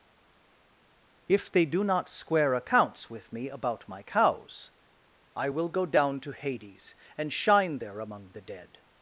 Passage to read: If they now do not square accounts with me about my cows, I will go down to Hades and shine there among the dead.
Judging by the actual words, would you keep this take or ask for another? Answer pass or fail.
fail